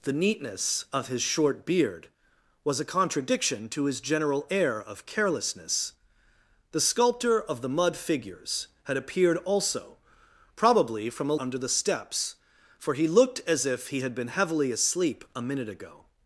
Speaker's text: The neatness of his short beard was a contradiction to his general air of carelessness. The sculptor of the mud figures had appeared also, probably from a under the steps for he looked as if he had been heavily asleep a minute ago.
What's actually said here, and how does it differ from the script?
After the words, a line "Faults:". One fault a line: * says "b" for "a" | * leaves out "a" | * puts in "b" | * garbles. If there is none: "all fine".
The neatness of his short beard was a contradiction to his general air of carelessness. The sculptor of the mud figures had appeared also, probably from a under the steps for he looked as if he had been heavily asleep a minute ago.
Faults:
all fine